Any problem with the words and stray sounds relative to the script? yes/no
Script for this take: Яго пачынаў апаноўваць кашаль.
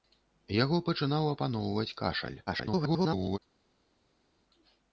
yes